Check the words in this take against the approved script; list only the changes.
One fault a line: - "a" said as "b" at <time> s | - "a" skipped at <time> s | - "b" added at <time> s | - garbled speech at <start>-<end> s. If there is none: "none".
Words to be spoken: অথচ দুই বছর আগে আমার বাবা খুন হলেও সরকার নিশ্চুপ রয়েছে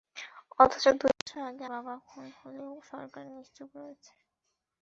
- "আমার" skipped at 1.6 s